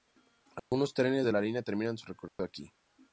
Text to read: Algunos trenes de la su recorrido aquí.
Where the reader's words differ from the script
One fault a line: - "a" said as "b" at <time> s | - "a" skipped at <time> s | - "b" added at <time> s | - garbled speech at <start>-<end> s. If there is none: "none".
- "línea terminan" added at 1.4 s